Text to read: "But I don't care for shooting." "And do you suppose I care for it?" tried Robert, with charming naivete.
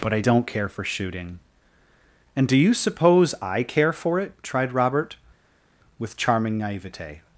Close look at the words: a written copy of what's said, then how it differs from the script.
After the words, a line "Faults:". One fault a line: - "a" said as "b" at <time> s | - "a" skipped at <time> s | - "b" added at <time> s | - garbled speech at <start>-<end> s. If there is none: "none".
"But I don't care for shooting." "And do you suppose I care for it?" tried Robert, with charming naivete.
Faults:
none